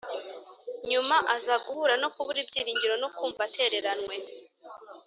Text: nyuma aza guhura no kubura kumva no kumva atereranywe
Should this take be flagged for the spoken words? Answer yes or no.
yes